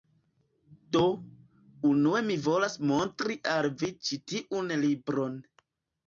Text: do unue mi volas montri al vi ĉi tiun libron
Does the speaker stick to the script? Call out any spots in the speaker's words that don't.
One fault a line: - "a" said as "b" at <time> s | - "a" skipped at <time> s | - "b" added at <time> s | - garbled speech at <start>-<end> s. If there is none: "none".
none